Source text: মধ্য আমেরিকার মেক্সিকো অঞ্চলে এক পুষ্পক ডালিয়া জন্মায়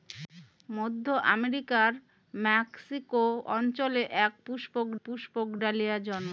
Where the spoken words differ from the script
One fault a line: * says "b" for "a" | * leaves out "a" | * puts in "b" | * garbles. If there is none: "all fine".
* puts in "পুষ্পক"